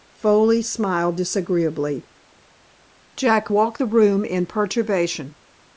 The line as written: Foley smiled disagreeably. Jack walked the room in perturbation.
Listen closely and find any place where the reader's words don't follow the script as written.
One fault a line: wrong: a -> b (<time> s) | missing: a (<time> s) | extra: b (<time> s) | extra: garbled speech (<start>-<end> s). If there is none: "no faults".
no faults